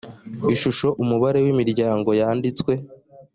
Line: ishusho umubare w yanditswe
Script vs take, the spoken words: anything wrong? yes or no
yes